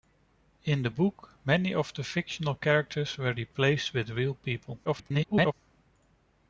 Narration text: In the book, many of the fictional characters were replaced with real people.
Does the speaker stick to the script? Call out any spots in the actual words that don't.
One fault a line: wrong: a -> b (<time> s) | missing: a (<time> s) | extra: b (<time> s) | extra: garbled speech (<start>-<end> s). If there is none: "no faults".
extra: garbled speech (4.8-5.5 s)